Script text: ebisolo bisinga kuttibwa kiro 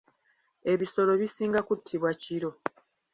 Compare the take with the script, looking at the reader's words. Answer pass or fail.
pass